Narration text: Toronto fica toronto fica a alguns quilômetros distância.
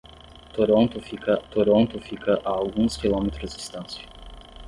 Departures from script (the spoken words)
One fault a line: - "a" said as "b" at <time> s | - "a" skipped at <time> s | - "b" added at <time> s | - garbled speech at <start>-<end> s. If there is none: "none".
none